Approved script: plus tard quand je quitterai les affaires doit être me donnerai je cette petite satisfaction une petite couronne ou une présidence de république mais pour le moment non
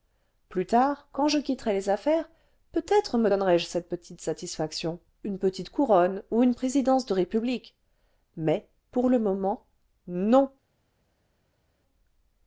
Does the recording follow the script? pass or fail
fail